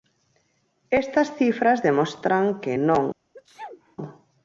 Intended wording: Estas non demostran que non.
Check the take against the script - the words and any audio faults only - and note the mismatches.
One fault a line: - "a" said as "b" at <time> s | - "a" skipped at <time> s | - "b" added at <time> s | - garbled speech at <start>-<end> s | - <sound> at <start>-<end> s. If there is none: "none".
- "non" said as "cifras" at 1.4 s
- sneeze at 3.3-4.0 s